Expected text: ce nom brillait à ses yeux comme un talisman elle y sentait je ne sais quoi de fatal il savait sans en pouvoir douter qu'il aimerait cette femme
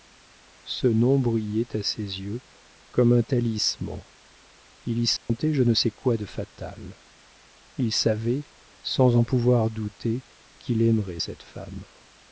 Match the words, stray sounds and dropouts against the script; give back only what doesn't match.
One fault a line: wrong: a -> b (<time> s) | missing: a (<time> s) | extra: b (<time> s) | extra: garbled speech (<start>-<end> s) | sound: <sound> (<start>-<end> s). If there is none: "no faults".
wrong: elle -> il (4.9 s)
sound: dropout (5.2-5.3 s)